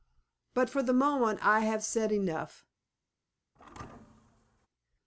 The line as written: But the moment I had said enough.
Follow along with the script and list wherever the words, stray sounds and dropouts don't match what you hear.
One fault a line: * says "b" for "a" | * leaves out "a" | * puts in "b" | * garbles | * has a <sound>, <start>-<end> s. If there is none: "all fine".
* puts in "for"
* says "have" for "had"
* has a thud, 3.6-4.7 s